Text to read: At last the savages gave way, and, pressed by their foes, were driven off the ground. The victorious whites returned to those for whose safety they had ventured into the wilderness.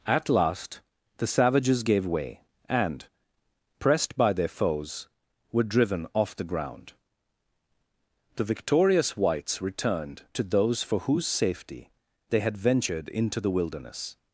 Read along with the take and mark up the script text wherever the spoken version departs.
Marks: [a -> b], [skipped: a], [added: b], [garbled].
At last the savages gave way, and, pressed by their foes, were driven off the ground. The victorious whites returned to those for whose safety they had ventured into the wilderness.